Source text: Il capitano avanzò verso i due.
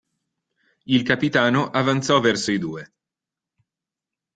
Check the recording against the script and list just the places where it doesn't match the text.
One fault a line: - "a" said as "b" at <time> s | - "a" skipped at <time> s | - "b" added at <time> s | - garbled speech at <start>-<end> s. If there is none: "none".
none